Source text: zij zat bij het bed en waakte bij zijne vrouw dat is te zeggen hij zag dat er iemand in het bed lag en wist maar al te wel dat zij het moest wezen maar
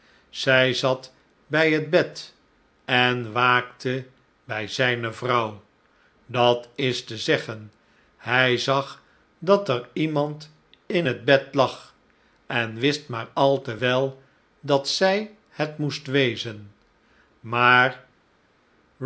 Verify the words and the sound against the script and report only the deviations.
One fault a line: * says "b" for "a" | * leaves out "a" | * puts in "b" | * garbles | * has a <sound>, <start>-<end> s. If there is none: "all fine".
all fine